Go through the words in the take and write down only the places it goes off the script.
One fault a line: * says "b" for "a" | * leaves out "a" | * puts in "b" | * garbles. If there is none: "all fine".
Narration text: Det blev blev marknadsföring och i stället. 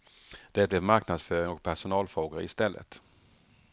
* leaves out "blev"
* puts in "personalfrågor"